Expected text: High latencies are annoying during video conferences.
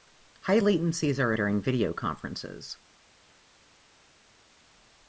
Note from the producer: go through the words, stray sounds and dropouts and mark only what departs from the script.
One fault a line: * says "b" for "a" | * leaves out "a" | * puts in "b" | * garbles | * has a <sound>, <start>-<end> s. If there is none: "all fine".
* leaves out "annoying"